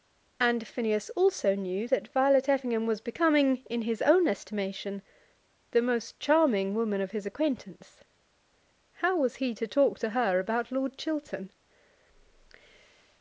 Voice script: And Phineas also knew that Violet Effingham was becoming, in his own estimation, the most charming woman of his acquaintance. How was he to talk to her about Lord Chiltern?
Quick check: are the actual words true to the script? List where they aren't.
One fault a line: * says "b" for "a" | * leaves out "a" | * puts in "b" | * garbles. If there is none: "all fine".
all fine